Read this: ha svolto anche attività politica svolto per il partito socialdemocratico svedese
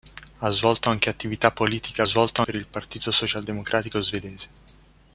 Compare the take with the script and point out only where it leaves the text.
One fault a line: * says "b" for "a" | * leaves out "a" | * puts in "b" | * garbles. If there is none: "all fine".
all fine